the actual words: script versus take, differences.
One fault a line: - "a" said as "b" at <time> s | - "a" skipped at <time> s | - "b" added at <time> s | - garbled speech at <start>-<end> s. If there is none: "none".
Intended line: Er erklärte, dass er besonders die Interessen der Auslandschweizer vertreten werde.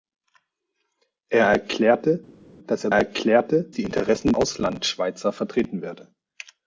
- "besonders" said as "erklärte" at 2.9 s
- "der" skipped at 4.3 s